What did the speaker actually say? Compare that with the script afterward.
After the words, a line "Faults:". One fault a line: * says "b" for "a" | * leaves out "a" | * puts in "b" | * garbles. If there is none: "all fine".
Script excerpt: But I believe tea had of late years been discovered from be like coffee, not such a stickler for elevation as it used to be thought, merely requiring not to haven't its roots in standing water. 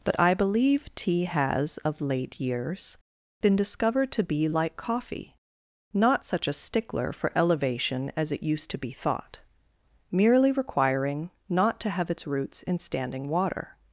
But I believe tea has of late years been discovered to be like coffee, not such a stickler for elevation as it used to be thought, merely requiring not to have its roots in standing water.
Faults:
* says "has" for "had"
* says "to" for "from"
* says "have" for "haven't"